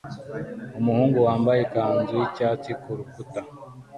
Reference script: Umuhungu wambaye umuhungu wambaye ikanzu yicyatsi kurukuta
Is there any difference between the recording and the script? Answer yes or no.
yes